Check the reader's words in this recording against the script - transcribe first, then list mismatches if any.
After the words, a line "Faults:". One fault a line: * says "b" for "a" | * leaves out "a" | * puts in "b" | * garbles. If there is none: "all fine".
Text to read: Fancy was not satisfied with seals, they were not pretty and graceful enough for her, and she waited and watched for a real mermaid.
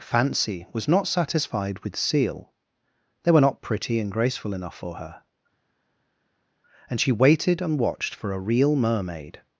Fancy was not satisfied with seal, they were not pretty and graceful enough for her, and she waited and watched for a real mermaid.
Faults:
* says "seal" for "seals"